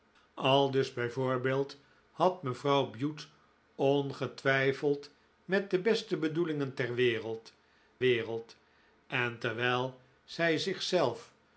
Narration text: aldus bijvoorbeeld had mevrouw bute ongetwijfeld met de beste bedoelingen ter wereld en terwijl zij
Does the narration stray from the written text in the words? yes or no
yes